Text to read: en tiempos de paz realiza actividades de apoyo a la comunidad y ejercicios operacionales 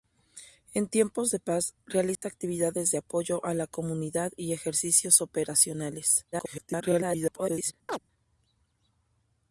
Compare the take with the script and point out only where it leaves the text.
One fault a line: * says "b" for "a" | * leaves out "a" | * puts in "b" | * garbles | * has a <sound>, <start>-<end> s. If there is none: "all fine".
* has a dropout, 2.2-2.2 s
* garbles
* has a chirp, 7.9-8.0 s